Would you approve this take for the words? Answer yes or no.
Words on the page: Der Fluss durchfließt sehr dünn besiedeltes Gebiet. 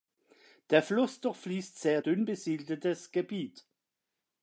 yes